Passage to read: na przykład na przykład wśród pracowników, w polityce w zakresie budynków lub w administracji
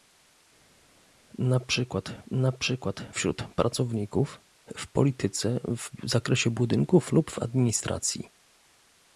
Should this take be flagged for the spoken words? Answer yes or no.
no